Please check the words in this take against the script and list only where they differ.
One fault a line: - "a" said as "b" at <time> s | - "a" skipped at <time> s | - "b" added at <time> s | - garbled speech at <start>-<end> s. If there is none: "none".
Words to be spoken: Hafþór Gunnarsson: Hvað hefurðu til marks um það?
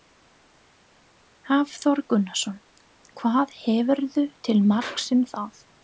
none